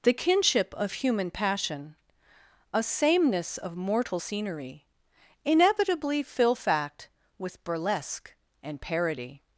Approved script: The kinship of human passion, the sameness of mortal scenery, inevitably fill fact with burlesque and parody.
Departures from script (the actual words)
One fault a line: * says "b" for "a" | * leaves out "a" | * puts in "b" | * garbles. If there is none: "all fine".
* says "a" for "the"